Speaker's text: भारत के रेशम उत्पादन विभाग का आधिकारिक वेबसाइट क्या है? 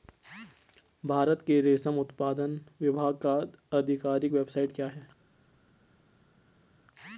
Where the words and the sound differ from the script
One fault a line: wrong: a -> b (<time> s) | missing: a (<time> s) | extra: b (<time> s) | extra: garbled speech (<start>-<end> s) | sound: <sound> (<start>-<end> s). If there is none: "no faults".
no faults